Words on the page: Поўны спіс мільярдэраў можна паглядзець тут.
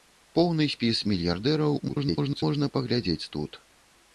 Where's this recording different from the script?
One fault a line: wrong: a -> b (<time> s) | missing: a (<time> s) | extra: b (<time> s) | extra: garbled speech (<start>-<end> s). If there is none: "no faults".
extra: garbled speech (1.9-2.4 s)